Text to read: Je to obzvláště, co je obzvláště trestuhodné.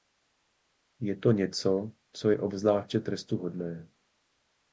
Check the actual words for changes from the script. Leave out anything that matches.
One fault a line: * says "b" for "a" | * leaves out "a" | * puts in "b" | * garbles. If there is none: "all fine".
* says "něco" for "obzvláště"